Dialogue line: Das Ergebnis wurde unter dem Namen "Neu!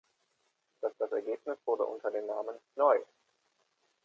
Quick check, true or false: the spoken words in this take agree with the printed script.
false